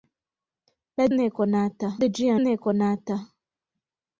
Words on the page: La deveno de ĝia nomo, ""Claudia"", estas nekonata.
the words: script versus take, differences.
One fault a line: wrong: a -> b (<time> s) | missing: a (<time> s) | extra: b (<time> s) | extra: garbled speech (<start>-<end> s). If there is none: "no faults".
wrong: deveno -> nekonata (1.2 s)
missing: nomo Claudia estas (2.4 s)